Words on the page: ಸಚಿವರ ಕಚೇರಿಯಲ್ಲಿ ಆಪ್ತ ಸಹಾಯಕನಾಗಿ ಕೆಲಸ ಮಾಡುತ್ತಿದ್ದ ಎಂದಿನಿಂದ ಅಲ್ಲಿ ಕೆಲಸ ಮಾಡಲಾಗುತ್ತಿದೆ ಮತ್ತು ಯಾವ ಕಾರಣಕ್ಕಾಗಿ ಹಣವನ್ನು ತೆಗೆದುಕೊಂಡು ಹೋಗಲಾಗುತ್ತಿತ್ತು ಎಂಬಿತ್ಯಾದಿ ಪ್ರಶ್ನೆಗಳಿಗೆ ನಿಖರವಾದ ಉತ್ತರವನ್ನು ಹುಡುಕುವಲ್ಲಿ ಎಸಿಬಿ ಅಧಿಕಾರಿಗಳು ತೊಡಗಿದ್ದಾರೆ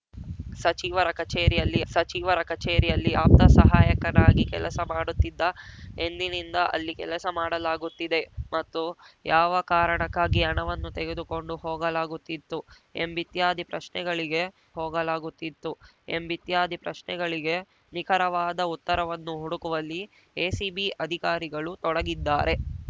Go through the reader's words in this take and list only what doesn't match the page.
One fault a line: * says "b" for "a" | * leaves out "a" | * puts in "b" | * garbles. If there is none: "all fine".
* puts in "ಸಚಿವರ ಕಚೇರಿಯಲ್ಲಿ"
* puts in "ಹೋಗಲಾಗುತ್ತಿತ್ತು ಎಂಬಿತ್ಯಾದಿ ಪ್ರಶ್ನೆಗಳಿಗೆ"